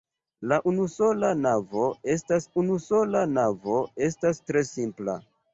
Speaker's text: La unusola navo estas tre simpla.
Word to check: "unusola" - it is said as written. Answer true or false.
true